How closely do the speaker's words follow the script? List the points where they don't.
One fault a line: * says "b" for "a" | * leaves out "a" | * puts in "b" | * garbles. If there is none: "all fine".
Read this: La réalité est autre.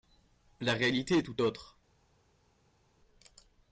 * puts in "tout"